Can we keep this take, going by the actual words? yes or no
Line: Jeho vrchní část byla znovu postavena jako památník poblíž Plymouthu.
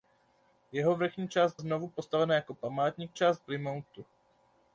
no